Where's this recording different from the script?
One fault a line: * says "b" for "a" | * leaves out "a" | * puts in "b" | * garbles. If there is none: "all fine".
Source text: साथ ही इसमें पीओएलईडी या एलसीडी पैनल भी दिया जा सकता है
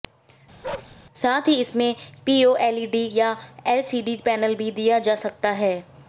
all fine